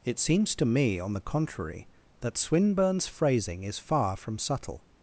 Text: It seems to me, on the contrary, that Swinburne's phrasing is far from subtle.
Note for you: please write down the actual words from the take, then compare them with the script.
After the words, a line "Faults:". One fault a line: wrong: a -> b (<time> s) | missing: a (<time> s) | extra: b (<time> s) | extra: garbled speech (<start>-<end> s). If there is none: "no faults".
It seems to me, on the contrary, that Swinburne's phrasing is far from subtle.
Faults:
no faults